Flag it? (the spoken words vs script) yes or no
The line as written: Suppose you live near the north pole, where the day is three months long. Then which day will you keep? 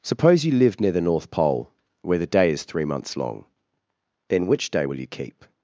no